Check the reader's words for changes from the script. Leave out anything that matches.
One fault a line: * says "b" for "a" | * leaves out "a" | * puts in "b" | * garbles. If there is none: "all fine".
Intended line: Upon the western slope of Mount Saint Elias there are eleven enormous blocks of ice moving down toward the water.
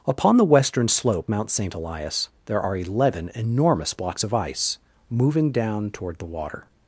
* leaves out "of"